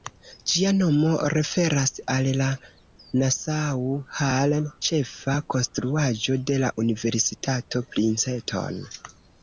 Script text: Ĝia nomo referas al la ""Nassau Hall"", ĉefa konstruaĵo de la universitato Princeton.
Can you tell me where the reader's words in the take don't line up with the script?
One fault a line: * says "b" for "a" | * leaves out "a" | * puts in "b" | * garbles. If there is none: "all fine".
all fine